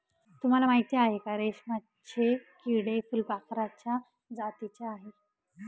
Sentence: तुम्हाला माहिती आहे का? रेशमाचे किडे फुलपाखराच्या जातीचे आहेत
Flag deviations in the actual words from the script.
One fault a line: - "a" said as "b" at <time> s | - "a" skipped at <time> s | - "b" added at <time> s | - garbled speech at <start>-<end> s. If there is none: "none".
none